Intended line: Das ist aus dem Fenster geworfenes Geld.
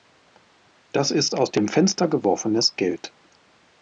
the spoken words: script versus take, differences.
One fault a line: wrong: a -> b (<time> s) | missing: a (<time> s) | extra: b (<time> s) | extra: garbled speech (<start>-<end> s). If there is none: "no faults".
no faults